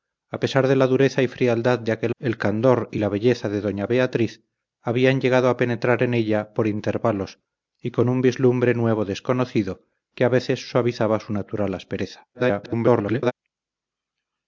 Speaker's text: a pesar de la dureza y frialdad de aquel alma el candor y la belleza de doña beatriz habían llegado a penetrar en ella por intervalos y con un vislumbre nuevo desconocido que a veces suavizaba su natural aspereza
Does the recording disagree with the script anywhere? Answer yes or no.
yes